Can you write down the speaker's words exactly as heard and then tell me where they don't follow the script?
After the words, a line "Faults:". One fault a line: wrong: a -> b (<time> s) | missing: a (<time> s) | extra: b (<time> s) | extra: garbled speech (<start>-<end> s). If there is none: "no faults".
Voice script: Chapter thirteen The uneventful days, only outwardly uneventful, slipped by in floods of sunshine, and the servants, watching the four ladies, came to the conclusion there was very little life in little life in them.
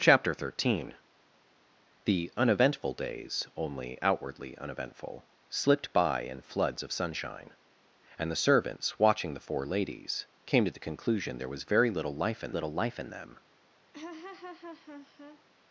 Chapter thirteen The uneventful days, only outwardly uneventful, slipped by in floods of sunshine, and the servants, watching the four ladies, came to the conclusion there was very little life in little life in them.
Faults:
no faults